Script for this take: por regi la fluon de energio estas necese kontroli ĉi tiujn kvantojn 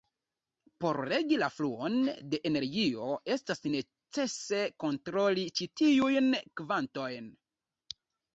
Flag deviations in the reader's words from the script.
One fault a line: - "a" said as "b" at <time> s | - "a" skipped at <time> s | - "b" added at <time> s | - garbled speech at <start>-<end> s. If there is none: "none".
none